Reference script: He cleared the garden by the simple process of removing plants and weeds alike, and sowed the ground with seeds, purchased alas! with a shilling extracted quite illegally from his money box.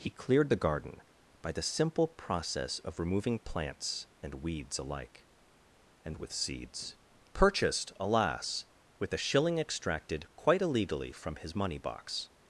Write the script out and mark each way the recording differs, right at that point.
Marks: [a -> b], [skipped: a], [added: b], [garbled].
He cleared the garden by the simple process of removing plants and weeds alike, and [skipped: sowed the ground] with seeds, purchased alas! with a shilling extracted quite illegally from his money box.